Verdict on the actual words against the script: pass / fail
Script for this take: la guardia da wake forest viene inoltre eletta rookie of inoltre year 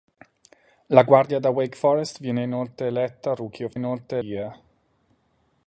pass